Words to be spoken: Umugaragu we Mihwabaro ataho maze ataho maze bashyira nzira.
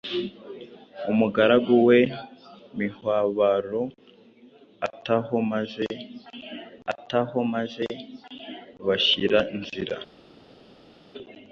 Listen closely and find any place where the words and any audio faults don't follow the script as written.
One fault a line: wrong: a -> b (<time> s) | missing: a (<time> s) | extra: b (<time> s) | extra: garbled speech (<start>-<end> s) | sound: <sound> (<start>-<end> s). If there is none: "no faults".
no faults